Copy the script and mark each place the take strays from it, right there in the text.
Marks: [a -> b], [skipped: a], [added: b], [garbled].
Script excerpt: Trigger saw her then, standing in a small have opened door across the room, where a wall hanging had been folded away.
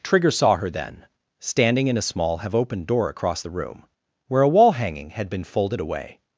Trigger saw her then, standing in a small have opened door across the room, where a wall hanging had been folded away.